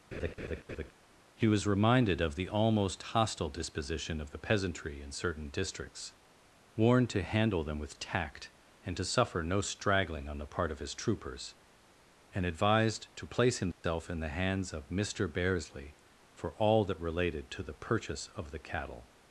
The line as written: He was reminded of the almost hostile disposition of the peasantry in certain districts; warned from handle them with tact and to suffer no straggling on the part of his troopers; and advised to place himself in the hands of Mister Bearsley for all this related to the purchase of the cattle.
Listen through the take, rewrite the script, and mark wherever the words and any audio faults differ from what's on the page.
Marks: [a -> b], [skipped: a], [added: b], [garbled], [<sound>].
[laugh] He was reminded of the almost hostile disposition of the peasantry in certain districts; warned [from -> to] handle them with tact and to suffer no straggling on the part of his troopers; and advised to place himself [dropout] in the hands of Mister Bearsley for all [this -> that] related to the purchase of the cattle.